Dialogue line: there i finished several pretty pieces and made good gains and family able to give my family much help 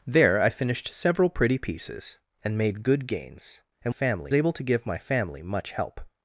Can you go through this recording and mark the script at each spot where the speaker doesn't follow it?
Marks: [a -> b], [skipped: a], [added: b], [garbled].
there i finished several pretty pieces and made good gains and family able to give my family much help